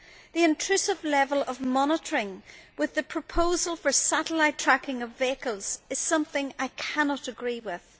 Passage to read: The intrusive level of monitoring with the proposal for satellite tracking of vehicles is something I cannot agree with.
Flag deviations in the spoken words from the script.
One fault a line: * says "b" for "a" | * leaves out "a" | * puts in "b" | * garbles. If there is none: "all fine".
all fine